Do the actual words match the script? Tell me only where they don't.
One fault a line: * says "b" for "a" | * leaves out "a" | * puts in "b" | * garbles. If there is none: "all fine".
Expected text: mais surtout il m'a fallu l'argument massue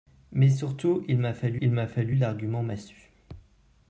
* puts in "il m'a fallu"